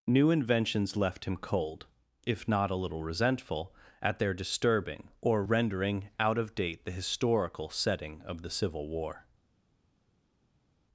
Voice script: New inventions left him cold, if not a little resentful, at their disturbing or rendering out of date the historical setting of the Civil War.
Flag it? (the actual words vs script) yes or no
no